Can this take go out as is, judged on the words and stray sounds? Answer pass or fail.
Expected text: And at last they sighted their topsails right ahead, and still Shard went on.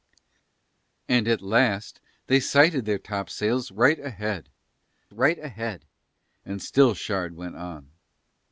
fail